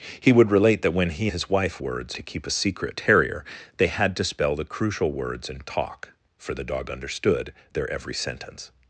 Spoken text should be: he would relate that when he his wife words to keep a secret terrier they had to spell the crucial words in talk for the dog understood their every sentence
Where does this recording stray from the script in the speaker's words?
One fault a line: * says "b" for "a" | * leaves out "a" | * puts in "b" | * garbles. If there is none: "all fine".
all fine